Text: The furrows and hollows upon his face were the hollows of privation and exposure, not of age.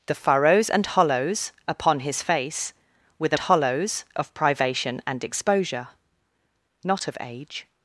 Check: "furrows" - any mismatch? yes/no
no